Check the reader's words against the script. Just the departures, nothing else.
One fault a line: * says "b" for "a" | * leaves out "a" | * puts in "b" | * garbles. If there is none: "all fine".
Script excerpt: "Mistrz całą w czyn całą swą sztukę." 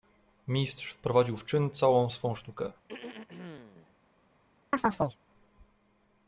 * says "wprowadził" for "całą"